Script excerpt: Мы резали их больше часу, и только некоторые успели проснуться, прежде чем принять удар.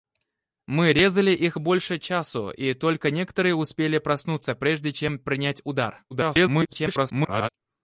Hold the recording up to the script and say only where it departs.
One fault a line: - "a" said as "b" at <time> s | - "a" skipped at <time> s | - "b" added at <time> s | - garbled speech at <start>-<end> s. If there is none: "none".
- garbled speech at 6.1-7.5 s